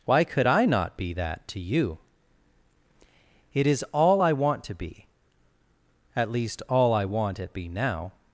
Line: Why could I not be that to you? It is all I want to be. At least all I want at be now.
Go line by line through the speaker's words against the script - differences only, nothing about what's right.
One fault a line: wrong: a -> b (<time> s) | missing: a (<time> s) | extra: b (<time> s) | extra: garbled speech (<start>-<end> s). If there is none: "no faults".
no faults